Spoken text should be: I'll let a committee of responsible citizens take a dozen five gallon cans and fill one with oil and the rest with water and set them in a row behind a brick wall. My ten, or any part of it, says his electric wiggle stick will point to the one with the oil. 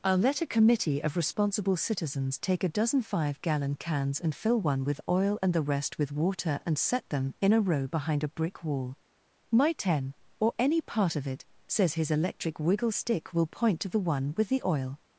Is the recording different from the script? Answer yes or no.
no